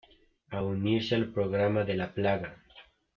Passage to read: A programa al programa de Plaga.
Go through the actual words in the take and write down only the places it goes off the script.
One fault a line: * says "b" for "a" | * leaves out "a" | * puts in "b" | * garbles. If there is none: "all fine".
* says "unirse" for "programa"
* puts in "la"